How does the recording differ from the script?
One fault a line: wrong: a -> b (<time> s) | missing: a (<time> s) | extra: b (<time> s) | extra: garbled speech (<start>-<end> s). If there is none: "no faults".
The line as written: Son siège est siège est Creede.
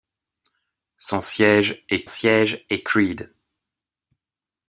no faults